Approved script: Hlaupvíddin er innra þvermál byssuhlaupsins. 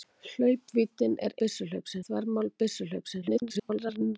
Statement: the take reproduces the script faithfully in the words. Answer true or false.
false